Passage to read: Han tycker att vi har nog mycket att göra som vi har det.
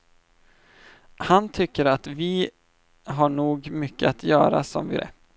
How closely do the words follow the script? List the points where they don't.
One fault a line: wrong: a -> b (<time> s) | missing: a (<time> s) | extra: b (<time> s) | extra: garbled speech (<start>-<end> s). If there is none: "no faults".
missing: har (5.0 s)